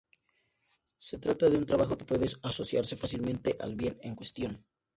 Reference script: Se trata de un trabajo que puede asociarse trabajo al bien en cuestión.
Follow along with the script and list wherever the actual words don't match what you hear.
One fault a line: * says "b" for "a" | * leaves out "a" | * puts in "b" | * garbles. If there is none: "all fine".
* says "fácilmente" for "trabajo"